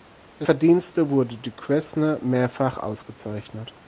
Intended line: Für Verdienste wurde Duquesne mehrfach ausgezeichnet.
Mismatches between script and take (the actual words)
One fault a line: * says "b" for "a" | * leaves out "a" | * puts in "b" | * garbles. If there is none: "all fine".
all fine